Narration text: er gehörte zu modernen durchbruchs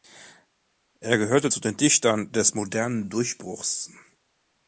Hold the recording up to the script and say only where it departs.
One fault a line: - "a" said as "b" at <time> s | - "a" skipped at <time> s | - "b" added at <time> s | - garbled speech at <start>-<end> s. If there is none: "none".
- "den dichtern des" added at 1.6 s